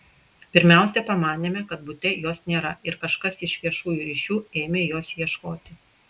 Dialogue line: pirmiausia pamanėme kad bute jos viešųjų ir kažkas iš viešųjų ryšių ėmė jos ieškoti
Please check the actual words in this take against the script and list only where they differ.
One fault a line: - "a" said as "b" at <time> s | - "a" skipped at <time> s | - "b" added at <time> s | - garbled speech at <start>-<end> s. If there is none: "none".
- "viešųjų" said as "nėra" at 2.5 s